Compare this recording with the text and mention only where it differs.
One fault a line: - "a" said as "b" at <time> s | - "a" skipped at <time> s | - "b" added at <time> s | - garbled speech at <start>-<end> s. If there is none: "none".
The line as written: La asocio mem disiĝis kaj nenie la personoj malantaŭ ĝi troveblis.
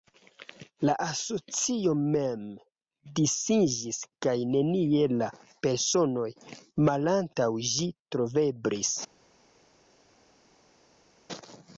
none